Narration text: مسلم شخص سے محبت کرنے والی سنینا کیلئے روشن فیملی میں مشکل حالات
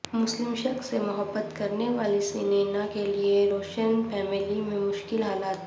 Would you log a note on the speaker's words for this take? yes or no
no